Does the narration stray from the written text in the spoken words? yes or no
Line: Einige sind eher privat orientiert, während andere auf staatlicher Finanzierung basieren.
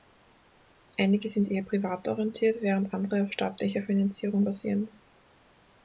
no